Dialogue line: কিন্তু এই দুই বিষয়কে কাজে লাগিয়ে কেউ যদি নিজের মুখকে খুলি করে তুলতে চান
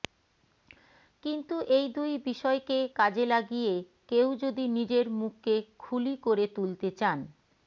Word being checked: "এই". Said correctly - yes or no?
yes